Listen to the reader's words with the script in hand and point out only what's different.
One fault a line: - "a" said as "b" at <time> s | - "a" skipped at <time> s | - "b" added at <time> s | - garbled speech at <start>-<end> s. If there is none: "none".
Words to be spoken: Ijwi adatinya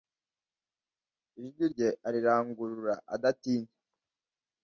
- "rye arirangurura" added at 1.7 s